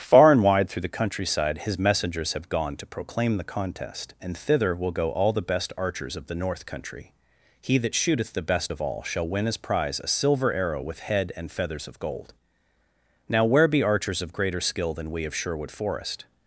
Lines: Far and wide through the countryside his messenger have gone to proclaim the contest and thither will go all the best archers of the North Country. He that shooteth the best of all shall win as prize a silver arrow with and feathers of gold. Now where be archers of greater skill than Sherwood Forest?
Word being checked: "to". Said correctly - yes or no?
yes